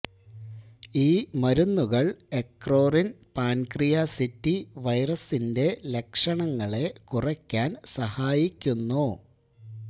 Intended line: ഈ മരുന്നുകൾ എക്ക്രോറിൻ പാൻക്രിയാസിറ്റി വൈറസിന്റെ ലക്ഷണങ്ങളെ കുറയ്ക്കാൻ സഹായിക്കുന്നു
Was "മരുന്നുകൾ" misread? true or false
false